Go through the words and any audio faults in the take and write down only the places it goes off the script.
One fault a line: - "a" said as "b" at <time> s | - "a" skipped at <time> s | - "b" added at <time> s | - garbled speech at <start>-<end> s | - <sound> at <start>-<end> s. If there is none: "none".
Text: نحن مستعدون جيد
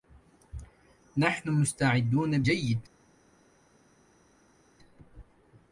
none